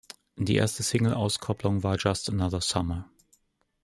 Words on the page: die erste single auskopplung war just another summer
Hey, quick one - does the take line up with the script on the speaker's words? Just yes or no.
yes